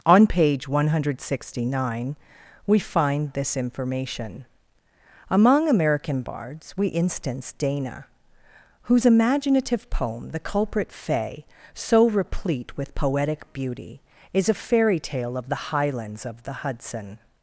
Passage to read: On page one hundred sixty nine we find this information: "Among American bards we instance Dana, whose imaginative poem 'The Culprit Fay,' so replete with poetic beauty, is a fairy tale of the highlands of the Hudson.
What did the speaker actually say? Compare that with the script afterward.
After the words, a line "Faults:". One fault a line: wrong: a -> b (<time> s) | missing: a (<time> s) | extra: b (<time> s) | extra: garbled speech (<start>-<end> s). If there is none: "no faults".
On page one hundred sixty nine we find this information: "Among American bards we instance Dana, whose imaginative poem 'The Culprit Fay,' so replete with poetic beauty, is a fairy tale of the highlands of the Hudson.
Faults:
no faults